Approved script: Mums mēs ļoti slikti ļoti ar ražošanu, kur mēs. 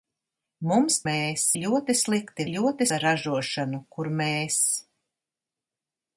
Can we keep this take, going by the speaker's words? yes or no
yes